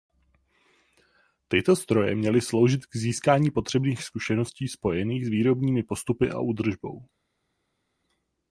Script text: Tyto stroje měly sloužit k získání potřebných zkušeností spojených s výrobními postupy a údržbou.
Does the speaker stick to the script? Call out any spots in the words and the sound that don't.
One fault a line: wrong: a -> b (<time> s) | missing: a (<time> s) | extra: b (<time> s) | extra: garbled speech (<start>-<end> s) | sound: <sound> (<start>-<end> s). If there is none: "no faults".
no faults